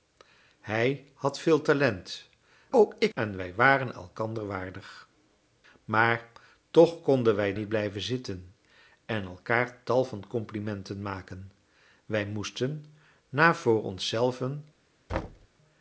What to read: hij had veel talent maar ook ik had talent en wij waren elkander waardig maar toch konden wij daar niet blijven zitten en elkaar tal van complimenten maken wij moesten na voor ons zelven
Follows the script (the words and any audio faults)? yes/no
no